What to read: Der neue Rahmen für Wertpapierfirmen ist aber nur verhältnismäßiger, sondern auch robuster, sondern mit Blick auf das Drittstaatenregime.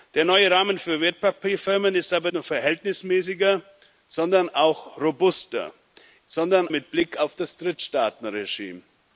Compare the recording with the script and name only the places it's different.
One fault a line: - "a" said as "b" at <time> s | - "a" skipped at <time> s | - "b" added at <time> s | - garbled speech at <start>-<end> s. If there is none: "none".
none